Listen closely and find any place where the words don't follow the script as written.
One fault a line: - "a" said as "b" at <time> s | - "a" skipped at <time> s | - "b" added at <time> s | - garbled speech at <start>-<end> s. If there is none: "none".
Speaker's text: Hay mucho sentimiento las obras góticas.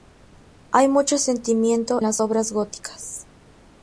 none